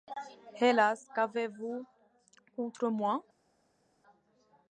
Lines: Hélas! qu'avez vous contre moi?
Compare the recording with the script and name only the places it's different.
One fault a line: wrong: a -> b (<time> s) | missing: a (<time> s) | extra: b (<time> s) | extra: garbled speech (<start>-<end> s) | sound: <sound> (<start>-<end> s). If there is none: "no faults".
no faults